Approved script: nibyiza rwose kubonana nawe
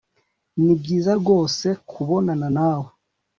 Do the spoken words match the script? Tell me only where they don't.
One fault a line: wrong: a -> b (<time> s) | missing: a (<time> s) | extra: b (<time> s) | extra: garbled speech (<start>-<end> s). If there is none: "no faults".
no faults